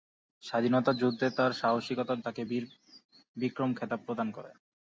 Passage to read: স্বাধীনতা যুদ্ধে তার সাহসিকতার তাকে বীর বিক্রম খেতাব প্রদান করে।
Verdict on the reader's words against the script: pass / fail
pass